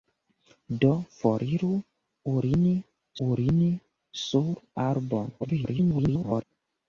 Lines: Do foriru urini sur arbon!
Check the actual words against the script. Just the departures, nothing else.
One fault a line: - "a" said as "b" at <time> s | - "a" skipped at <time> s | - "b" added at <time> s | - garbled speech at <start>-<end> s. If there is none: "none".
- "urini" added at 3.3 s
- garbled speech at 5.4-6.4 s